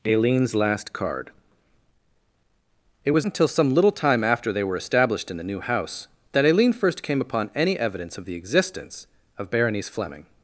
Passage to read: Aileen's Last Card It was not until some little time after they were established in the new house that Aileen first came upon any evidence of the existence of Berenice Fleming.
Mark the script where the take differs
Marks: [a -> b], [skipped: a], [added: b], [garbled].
Aileen's Last Card It was [skipped: not] until some little time after they were established in the new house that Aileen first came upon any evidence of the existence of Berenice Fleming.